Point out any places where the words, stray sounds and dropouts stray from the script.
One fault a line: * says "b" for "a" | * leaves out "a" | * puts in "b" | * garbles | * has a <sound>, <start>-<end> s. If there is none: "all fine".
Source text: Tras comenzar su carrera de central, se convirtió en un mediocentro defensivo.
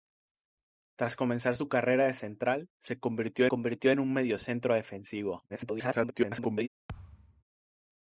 * puts in "convirtió"
* garbles
* has a thud, 6.9-7.4 s